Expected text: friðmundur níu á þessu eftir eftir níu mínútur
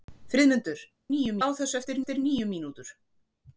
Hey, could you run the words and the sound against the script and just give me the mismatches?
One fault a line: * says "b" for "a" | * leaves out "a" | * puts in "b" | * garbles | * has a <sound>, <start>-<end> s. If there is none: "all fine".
all fine